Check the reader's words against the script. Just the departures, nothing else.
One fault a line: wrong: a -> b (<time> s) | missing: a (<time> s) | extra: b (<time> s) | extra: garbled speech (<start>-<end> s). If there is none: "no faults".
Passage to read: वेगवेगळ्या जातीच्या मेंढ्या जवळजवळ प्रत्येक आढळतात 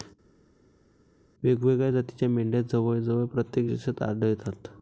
extra: देशात (3.6 s)